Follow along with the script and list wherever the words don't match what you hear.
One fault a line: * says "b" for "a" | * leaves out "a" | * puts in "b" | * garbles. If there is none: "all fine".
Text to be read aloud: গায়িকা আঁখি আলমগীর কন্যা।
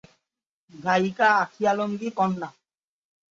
all fine